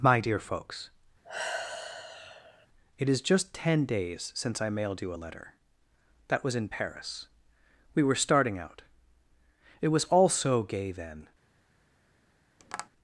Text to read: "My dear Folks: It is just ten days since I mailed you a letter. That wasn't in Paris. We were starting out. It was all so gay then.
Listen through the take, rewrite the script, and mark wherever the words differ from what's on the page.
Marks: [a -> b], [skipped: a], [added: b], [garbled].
"My dear Folks: It is just ten days since I mailed you a letter. That [wasn't -> was] in Paris. We were starting out. It was all so gay then.